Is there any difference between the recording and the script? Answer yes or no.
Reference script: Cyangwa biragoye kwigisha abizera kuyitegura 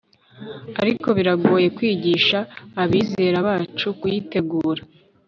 yes